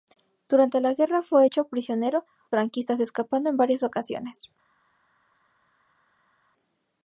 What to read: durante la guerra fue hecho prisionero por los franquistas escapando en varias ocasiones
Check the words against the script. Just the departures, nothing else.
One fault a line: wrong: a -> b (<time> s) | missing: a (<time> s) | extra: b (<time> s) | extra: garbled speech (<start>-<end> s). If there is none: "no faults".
missing: por los (2.2 s)